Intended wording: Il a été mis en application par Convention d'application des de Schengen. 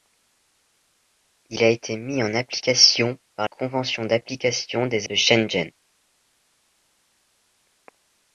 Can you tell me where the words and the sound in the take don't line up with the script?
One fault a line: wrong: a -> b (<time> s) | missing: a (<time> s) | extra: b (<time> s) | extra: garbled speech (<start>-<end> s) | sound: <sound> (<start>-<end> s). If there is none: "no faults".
no faults